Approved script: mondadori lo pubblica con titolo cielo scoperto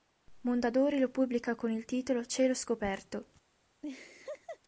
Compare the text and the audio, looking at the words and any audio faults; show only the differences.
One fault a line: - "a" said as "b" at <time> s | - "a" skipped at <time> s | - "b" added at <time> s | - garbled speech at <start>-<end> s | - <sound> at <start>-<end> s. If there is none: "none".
- "il" added at 1.7 s
- laugh at 3.8-4.6 s